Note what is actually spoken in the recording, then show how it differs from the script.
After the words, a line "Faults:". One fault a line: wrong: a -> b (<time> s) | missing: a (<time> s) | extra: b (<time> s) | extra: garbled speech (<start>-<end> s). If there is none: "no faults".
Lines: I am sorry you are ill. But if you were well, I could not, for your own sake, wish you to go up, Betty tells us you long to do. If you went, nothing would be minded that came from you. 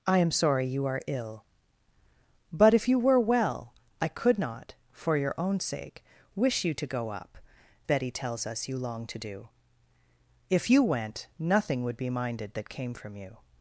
I am sorry you are ill. But if you were well, I could not, for your own sake, wish you to go up, Betty tells us you long to do. If you went, nothing would be minded that came from you.
Faults:
no faults